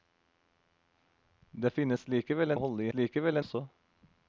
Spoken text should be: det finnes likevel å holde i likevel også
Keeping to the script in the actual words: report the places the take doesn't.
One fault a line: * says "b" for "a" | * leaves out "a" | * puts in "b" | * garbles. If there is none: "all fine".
all fine